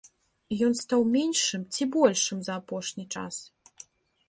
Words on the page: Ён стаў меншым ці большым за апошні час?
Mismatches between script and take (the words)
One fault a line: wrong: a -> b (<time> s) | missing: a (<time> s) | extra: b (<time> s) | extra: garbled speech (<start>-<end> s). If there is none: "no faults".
no faults